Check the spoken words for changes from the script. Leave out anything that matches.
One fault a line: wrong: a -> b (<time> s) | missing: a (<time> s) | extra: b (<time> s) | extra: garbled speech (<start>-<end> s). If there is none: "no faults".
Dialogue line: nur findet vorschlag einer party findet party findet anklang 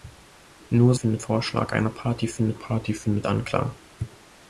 no faults